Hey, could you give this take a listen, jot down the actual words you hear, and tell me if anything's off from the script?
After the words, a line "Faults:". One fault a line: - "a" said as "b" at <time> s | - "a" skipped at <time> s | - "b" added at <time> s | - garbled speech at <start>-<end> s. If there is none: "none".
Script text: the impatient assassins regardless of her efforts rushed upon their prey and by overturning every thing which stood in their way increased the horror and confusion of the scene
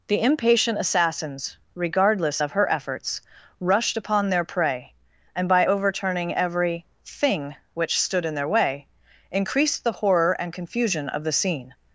the impatient assassins regardless of her efforts rushed upon their prey and by overturning every thing which stood in their way increased the horror and confusion of the scene
Faults:
none